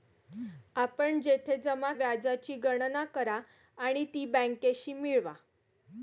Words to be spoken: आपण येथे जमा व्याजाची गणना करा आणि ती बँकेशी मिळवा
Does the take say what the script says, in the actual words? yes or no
yes